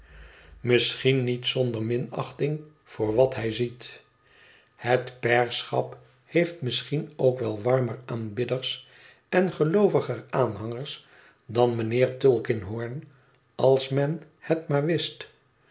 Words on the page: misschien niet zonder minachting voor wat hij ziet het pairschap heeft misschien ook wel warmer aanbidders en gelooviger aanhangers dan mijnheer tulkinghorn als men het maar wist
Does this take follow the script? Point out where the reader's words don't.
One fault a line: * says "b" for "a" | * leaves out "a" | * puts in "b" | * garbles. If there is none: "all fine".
all fine